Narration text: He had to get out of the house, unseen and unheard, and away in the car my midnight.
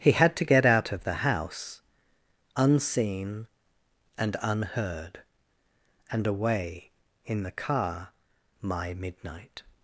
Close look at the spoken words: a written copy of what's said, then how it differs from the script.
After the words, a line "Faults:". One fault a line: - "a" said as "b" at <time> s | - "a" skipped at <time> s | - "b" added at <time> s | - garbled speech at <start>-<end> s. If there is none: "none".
He had to get out of the house, unseen and unheard, and away in the car my midnight.
Faults:
none